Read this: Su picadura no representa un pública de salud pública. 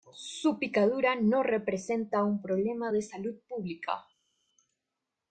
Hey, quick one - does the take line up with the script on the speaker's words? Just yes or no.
no